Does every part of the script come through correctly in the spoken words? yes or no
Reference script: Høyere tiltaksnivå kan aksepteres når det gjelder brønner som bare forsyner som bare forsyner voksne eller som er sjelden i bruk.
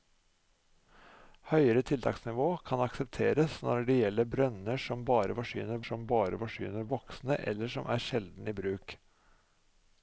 yes